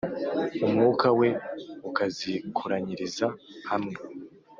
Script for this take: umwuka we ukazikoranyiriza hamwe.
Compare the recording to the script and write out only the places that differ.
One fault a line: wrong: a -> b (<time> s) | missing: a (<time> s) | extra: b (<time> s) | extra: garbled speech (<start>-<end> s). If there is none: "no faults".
no faults